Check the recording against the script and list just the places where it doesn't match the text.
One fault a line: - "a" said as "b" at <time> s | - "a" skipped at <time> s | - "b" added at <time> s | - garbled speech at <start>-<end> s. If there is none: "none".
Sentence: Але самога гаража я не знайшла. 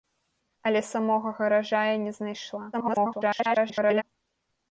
- garbled speech at 2.7-4.0 s